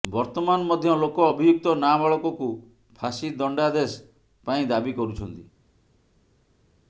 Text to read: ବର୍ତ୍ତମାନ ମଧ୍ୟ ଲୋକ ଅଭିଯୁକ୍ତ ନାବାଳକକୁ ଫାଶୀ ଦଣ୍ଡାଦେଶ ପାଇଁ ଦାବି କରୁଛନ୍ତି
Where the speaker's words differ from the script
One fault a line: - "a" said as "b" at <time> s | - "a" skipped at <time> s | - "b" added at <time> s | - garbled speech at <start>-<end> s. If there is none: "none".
none